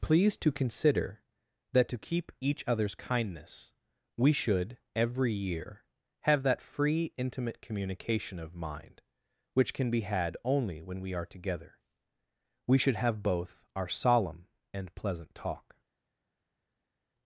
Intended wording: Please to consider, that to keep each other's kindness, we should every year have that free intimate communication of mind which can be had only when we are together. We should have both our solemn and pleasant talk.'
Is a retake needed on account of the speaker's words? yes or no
no